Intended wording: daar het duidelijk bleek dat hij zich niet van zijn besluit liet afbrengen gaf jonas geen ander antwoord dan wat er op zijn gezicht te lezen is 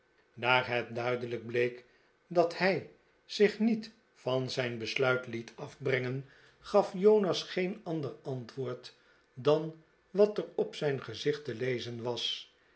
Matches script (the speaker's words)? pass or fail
fail